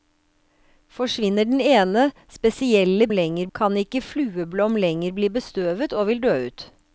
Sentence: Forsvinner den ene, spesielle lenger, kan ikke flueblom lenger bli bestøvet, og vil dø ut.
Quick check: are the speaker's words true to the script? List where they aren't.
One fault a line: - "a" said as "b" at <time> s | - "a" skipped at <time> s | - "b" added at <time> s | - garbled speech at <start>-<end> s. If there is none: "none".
none